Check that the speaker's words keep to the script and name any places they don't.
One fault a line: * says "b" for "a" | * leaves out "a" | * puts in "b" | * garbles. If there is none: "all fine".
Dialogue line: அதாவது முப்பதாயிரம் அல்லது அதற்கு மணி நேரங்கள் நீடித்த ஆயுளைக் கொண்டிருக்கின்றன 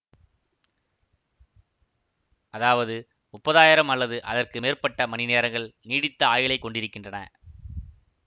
* puts in "மேற்பட்ட"